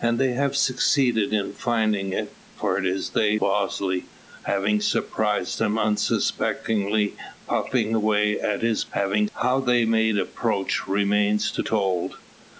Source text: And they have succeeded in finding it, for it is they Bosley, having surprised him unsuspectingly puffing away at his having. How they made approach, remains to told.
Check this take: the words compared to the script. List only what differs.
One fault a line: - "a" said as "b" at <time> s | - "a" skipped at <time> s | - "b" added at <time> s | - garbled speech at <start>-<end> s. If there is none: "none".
none